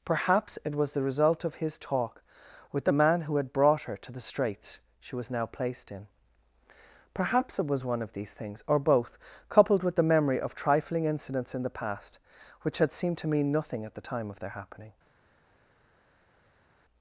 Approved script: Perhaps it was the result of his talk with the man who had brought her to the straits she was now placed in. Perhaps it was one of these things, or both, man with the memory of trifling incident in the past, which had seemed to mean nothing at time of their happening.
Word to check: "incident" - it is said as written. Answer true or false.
false